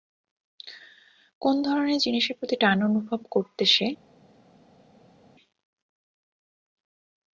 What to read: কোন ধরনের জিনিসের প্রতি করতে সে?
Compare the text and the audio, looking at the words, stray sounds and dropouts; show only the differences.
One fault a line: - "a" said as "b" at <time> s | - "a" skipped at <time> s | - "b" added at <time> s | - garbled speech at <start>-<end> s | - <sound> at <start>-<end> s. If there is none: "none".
- "টান অনুভব" added at 2.5 s